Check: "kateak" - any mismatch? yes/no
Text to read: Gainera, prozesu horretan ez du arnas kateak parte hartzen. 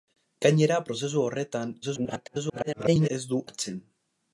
yes